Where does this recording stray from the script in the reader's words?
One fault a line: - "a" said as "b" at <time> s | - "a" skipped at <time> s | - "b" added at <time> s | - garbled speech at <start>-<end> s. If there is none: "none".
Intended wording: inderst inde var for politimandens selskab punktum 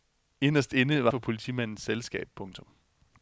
none